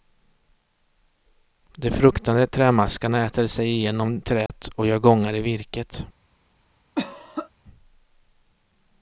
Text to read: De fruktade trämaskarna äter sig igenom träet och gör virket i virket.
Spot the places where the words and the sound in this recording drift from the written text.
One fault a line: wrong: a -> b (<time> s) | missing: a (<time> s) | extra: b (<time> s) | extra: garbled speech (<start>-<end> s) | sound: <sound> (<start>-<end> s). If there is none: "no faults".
sound: dropout (4.5-4.5 s)
wrong: virket -> gångar (5.0 s)
sound: cough (7.0-7.5 s)